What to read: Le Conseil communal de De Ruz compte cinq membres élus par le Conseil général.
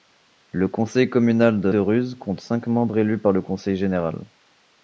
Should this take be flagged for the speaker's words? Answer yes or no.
no